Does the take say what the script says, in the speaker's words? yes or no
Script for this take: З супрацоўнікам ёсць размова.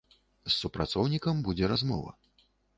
no